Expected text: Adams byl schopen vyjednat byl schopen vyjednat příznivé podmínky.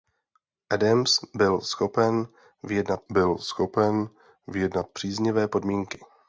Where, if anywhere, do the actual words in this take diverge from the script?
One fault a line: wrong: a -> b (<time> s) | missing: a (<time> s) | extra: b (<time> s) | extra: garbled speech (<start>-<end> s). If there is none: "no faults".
no faults